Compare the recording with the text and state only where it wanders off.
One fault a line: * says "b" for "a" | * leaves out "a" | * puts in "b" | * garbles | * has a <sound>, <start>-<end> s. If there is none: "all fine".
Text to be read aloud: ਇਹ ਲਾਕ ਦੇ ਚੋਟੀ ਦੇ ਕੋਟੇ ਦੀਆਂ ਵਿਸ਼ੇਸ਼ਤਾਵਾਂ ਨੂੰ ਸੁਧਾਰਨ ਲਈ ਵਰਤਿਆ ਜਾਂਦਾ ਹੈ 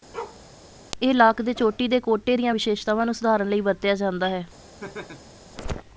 * has a bark, 0.1-0.4 s
* has a laugh, 4.8-5.4 s